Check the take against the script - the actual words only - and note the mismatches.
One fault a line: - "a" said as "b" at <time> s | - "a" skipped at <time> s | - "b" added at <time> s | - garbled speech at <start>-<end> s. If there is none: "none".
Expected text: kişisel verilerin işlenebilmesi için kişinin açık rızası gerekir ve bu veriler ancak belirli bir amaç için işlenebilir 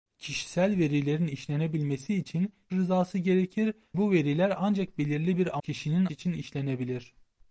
- "kişinin açık" skipped at 2.5 s
- "ve" skipped at 3.7 s
- "amaç" said as "kişinin" at 5.6 s